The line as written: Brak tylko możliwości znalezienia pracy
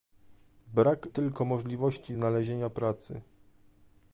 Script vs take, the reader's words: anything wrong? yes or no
no